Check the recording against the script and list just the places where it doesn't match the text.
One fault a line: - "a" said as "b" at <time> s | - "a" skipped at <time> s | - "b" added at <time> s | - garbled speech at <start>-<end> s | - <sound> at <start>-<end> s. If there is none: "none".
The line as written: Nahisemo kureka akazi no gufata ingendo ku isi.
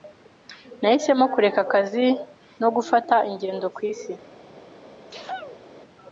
- sneeze at 5.1-5.6 s